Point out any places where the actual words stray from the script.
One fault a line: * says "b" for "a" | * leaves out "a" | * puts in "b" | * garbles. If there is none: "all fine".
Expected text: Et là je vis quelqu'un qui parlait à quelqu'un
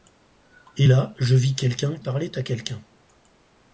* leaves out "qui"